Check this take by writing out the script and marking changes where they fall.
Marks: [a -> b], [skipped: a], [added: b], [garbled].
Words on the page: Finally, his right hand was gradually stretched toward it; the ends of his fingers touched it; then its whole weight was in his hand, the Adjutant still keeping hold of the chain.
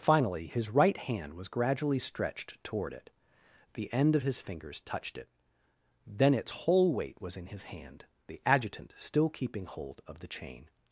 Finally, his right hand was gradually stretched toward it; the [ends -> end] of his fingers touched it; then its whole weight was in his hand, the Adjutant still keeping hold of the chain.